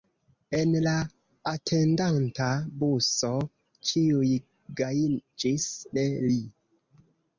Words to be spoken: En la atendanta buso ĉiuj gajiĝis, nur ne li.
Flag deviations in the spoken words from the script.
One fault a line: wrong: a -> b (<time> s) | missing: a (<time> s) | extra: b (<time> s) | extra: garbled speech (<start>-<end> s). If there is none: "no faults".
missing: nur (5.7 s)